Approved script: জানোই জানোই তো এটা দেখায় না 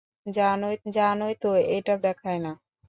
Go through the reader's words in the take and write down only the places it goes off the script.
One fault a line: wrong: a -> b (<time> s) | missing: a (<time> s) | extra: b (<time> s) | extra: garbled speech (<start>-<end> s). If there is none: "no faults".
no faults